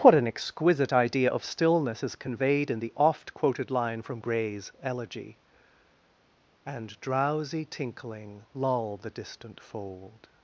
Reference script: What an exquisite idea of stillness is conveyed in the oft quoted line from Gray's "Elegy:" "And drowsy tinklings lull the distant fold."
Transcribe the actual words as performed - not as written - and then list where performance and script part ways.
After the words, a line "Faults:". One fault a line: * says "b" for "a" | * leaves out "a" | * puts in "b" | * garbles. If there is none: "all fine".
What an exquisite idea of stillness is conveyed in the oft quoted line from Gray's "Elegy:" "And drowsy tinkling lull the distant fold."
Faults:
* says "tinkling" for "tinklings"